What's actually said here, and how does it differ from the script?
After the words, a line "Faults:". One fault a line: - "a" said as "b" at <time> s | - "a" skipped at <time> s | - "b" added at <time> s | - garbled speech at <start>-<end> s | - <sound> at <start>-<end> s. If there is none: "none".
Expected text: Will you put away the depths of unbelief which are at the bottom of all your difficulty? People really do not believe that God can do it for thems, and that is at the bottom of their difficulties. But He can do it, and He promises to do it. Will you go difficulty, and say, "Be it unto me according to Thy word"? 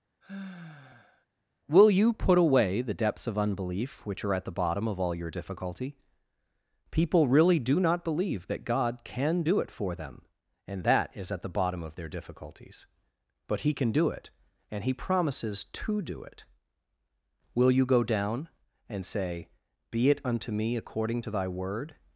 Will you put away the depths of unbelief which are at the bottom of all your difficulty? People really do not believe that God can do it for them, and that is at the bottom of their difficulties. But He can do it, and He promises to do it. Will you go down, and say, "Be it unto me according to Thy word"?
Faults:
- sigh at 0.2-1.3 s
- "thems" said as "them" at 9.9 s
- "difficulty" said as "down" at 18.0 s